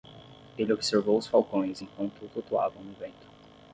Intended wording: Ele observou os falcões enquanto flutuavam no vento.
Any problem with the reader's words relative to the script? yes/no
no